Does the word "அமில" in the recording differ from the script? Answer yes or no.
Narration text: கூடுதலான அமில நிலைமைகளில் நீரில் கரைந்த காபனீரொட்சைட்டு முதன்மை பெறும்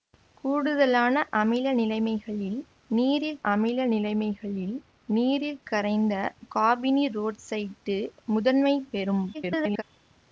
no